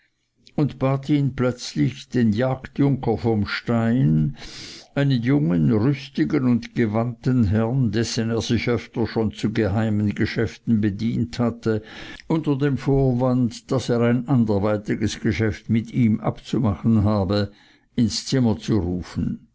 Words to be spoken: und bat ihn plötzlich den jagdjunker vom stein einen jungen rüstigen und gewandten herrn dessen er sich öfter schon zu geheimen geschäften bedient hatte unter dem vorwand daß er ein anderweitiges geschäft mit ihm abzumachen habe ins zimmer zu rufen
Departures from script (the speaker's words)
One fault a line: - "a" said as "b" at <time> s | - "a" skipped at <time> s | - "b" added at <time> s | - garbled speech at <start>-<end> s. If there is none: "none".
none